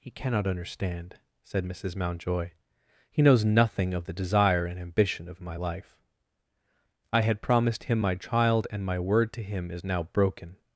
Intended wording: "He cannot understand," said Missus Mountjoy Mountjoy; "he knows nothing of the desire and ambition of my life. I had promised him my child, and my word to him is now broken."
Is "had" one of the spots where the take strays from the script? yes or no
no